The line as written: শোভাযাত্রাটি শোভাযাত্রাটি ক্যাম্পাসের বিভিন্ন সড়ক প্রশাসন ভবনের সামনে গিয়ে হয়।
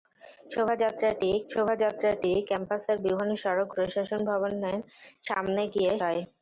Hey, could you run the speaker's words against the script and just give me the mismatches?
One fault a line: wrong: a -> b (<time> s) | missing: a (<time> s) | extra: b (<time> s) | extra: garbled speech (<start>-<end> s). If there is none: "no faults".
no faults